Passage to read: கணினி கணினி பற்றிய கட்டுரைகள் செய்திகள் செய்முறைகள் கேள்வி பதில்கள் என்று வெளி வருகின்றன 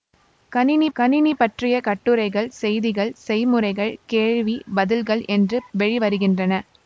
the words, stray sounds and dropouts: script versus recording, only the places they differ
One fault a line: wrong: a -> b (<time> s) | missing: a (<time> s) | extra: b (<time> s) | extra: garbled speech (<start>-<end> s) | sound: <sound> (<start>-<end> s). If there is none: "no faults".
no faults